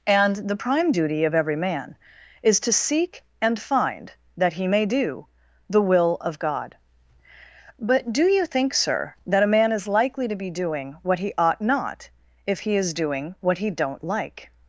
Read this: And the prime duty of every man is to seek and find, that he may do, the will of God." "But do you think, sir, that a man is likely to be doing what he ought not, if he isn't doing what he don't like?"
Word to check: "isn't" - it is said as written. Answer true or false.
false